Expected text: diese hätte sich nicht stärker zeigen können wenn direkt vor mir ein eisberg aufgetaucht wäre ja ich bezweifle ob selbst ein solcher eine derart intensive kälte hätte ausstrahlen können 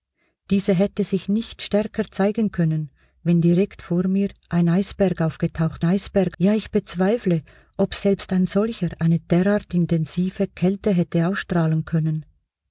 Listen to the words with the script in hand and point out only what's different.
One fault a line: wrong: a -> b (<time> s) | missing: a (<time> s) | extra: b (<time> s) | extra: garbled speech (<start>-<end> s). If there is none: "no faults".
wrong: wäre -> eisberg (5.8 s)